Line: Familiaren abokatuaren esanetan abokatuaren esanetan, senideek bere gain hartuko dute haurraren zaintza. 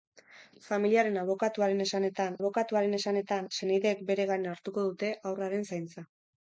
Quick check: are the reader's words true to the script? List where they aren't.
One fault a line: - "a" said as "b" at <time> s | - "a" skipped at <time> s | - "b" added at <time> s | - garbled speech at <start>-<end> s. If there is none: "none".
none